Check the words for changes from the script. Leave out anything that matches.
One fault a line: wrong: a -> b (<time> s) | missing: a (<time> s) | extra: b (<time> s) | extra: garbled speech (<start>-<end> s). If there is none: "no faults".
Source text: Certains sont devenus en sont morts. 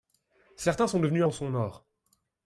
no faults